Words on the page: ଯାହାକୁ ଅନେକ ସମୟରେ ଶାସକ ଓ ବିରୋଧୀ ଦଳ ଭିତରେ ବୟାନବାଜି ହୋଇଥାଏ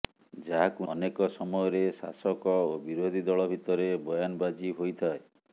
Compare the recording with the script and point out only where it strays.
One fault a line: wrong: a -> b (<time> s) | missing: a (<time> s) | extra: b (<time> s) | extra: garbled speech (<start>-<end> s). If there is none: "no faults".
no faults